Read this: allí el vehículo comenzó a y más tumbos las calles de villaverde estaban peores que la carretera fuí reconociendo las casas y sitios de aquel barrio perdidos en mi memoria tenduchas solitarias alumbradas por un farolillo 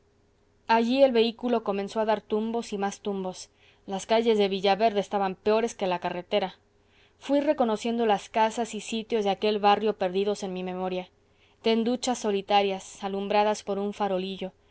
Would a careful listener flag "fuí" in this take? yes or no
no